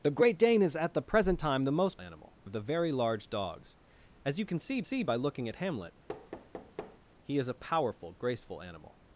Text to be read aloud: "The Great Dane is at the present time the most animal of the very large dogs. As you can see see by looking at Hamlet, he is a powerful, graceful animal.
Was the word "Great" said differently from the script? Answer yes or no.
no